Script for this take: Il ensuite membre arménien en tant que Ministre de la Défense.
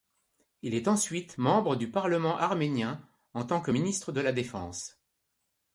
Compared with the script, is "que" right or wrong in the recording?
right